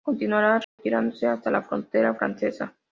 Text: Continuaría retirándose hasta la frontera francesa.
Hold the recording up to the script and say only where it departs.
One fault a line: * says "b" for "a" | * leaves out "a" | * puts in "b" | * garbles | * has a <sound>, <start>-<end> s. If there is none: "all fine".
* has a dropout, 0.6-0.8 s